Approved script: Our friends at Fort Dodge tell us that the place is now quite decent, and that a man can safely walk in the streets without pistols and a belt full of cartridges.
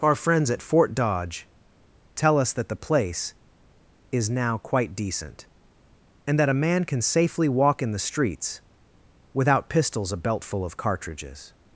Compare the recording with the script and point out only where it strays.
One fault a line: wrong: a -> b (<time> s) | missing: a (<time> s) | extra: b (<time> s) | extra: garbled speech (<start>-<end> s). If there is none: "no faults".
missing: and (10.1 s)